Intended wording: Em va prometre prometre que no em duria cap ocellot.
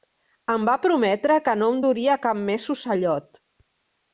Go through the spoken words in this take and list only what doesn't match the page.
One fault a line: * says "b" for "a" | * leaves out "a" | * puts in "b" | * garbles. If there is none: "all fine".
* leaves out "prometre"
* puts in "més"